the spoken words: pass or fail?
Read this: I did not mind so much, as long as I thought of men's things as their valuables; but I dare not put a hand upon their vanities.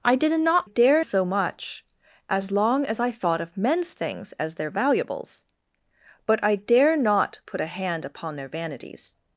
fail